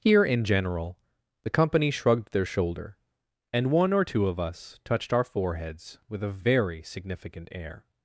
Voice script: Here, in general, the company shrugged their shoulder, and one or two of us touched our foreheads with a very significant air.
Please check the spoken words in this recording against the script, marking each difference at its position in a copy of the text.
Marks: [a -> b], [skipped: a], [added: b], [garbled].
Here, in general, the company shrugged their shoulder, and one or two of us touched our foreheads with a very significant air.